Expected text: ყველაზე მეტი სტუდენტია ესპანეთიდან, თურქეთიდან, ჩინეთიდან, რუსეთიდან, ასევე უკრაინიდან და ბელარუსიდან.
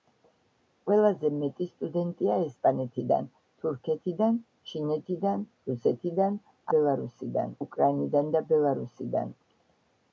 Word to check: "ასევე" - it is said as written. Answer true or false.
false